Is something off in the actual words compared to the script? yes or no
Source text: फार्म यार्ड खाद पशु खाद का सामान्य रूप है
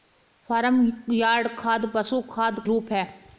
yes